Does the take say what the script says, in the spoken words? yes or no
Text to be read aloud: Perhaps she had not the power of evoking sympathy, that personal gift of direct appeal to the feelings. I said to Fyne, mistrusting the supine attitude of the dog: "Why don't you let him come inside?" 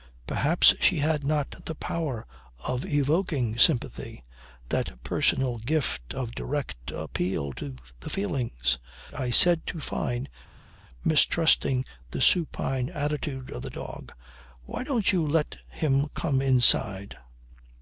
yes